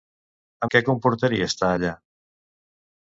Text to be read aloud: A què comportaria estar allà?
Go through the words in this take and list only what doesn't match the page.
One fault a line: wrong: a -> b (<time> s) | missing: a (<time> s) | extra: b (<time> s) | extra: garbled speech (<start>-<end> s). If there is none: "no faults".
no faults